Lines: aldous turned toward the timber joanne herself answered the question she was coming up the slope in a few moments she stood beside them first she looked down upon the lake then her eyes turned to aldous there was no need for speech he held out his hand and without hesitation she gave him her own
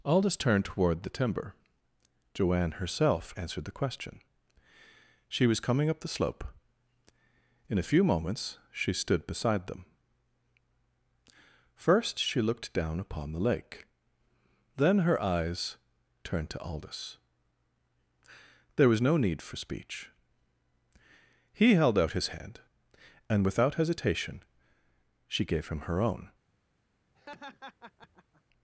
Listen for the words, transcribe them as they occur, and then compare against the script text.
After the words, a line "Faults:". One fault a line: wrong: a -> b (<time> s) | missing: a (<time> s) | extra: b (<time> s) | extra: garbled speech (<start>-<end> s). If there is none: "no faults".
aldous turned toward the timber joanne herself answered the question she was coming up the slope in a few moments she stood beside them first she looked down upon the lake then her eyes turned to aldous there was no need for speech he held out his hand and without hesitation she gave him her own
Faults:
no faults